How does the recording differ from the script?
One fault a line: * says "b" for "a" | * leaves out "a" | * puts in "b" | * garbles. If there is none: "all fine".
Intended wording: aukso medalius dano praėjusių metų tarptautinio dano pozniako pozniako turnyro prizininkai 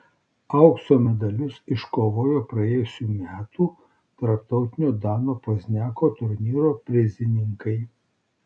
* says "iškovojo" for "dano"
* leaves out "pozniako"